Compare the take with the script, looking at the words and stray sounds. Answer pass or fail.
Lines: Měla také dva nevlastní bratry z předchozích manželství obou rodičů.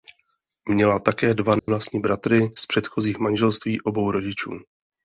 fail